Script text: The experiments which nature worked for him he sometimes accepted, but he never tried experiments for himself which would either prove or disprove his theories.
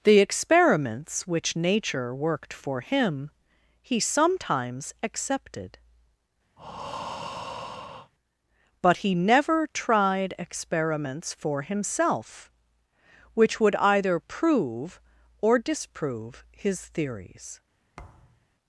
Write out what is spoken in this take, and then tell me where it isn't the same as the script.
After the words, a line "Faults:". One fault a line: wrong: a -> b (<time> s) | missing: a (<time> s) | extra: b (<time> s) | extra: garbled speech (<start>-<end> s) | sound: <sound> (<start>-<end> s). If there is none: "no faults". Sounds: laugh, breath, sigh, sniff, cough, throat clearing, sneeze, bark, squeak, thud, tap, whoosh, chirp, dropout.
The experiments which nature worked for him he sometimes accepted, but he never tried experiments for himself which would either prove or disprove his theories.
Faults:
sound: breath (6.6-8.1 s)
sound: thud (18.0-18.5 s)